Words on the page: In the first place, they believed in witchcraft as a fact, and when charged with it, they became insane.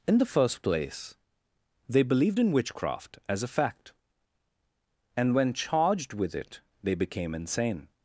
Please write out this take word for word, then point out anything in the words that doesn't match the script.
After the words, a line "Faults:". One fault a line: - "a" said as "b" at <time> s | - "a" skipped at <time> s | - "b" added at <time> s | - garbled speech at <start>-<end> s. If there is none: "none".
In the first place, they believed in witchcraft as a fact, and when charged with it, they became insane.
Faults:
none